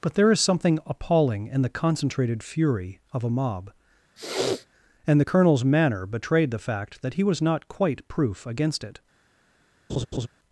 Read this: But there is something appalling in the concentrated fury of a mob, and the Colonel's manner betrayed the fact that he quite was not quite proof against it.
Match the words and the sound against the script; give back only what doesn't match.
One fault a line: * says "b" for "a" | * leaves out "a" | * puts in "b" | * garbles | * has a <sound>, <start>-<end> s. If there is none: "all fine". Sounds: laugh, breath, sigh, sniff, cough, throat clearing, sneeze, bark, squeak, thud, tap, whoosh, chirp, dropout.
* has a sniff, 4.2-4.7 s
* leaves out "quite"
* has a laugh, 9.9-10.3 s